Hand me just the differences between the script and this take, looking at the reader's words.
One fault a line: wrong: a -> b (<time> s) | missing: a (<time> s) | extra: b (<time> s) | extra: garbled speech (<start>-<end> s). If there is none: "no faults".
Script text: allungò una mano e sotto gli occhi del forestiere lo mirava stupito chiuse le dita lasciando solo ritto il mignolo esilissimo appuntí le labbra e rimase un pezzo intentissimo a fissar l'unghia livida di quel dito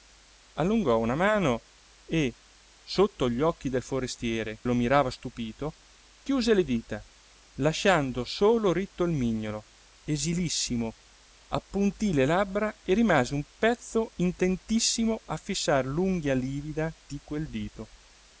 no faults